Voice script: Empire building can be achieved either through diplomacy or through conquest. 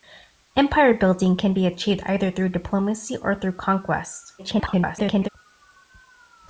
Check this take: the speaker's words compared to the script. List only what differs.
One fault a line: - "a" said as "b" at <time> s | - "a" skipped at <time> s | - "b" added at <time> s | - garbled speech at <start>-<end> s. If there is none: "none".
- garbled speech at 4.4-5.3 s